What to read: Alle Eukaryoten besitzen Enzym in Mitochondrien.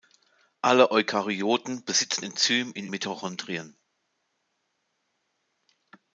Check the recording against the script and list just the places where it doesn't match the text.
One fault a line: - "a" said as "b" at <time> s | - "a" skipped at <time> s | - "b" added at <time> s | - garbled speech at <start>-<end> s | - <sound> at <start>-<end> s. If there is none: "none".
none